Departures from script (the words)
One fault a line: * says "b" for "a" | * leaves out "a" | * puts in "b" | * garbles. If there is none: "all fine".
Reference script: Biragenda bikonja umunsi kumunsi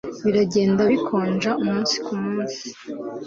all fine